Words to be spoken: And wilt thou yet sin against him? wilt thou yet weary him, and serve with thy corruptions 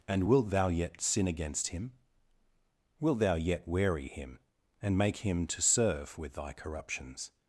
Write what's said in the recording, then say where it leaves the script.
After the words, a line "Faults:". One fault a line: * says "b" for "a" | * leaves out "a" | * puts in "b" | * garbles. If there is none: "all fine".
And wilt thou yet sin against him? wilt thou yet weary him, and make him to serve with thy corruptions
Faults:
* puts in "make him to"